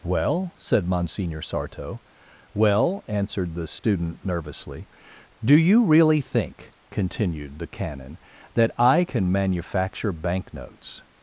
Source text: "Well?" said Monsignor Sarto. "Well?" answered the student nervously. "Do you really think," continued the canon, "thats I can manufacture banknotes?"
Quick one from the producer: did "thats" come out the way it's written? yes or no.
no